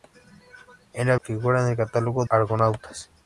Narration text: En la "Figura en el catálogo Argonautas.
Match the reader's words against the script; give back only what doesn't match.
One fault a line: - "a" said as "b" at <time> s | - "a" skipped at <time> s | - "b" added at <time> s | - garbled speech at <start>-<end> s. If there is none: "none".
none